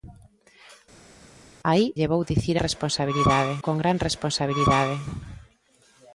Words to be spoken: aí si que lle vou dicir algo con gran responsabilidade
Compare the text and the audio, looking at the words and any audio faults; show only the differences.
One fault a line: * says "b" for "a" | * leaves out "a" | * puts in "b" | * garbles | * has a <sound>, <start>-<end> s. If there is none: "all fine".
* leaves out "si que"
* says "responsabilidade" for "algo"